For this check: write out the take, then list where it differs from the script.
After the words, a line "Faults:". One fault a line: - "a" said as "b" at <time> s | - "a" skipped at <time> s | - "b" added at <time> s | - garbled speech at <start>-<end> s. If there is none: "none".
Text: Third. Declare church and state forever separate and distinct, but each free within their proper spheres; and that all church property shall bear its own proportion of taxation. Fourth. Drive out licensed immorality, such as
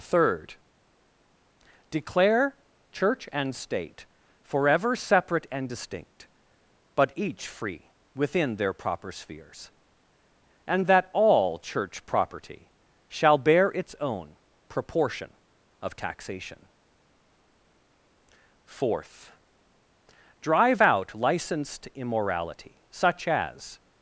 Third. Declare church and state forever separate and distinct, but each free within their proper spheres; and that all church property shall bear its own proportion of taxation. Fourth. Drive out licensed immorality, such as
Faults:
none